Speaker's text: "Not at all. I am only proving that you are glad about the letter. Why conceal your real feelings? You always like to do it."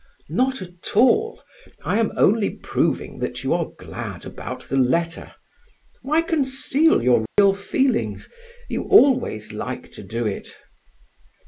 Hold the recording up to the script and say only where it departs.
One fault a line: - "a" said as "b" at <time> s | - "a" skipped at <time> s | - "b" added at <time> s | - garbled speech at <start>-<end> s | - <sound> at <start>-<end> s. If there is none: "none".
- dropout at 7.3-7.4 s